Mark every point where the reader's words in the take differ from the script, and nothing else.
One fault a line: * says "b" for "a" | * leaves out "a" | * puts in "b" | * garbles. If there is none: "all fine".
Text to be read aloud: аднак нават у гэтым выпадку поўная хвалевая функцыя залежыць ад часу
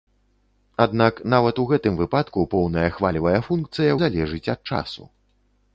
all fine